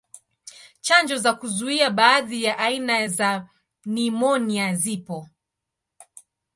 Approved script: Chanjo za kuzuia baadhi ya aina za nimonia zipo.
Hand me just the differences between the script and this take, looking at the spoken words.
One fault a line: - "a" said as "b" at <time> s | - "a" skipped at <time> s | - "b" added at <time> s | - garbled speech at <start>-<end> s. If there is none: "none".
none